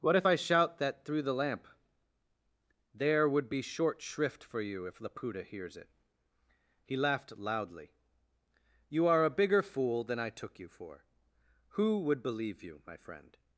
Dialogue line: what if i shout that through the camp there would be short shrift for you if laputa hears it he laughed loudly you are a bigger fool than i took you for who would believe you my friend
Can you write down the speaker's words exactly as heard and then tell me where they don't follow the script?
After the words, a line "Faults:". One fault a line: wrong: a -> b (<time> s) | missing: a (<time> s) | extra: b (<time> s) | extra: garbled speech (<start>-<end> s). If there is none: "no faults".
what if i shout that through the lamp there would be short shrift for you if laputa hears it he laughed loudly you are a bigger fool than i took you for who would believe you my friend
Faults:
wrong: camp -> lamp (1.3 s)